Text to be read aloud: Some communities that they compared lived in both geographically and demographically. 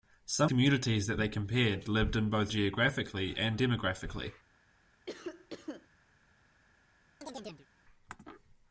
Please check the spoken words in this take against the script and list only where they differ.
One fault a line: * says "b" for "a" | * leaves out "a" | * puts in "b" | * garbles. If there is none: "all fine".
all fine